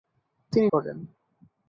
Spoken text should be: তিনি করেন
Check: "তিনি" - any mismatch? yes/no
no